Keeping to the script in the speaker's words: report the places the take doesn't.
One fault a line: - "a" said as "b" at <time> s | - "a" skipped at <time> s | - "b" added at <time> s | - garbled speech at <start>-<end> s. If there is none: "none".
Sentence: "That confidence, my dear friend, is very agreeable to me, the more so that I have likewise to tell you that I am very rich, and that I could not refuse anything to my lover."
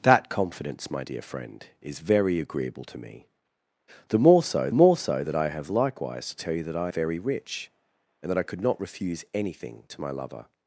- "more so" added at 4.7 s
- "am" skipped at 6.9 s